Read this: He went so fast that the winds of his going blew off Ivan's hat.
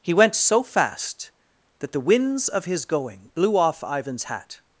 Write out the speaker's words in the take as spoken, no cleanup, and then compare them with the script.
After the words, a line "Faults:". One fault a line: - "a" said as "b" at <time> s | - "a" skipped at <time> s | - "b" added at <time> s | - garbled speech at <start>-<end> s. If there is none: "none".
He went so fast that the winds of his going blew off Ivan's hat.
Faults:
none